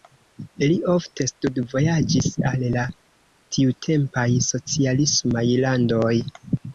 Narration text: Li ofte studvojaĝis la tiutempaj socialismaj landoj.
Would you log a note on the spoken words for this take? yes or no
yes